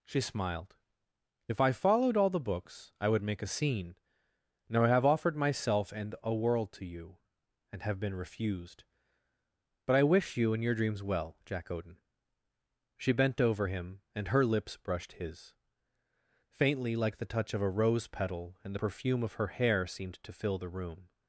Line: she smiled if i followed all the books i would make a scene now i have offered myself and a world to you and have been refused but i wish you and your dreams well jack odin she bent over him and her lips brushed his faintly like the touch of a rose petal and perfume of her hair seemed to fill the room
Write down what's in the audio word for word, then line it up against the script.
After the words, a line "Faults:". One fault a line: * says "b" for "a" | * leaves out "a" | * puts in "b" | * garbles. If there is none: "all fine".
she smiled if i followed all the books i would make a scene now i have offered myself and a world to you and have been refused but i wish you and your dreams well jack odin she bent over him and her lips brushed his faintly like the touch of a rose petal and perfume of her hair seemed to fill the room
Faults:
all fine